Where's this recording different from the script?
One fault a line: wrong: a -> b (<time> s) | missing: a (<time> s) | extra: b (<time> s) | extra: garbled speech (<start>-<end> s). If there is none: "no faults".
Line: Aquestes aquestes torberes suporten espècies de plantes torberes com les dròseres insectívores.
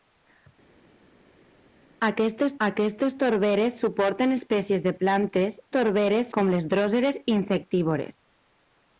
no faults